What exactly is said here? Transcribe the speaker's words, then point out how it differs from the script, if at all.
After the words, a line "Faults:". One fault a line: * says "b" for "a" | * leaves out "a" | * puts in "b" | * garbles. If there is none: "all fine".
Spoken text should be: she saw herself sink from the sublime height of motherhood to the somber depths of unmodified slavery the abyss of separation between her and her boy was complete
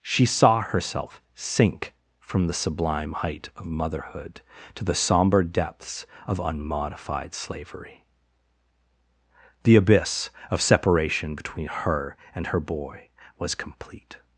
she saw herself sink from the sublime height of motherhood to the somber depths of unmodified slavery the abyss of separation between her and her boy was complete
Faults:
all fine